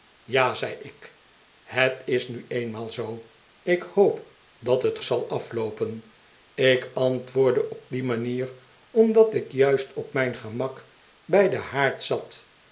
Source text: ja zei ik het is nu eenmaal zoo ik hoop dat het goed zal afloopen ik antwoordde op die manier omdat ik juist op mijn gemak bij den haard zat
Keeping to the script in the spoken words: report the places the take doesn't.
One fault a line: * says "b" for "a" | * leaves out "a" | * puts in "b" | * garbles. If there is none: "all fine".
* leaves out "goed"